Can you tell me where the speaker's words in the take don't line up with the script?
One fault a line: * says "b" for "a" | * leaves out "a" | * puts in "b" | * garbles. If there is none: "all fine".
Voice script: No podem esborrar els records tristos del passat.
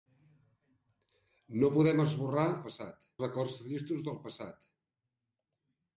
* says "passat" for "els"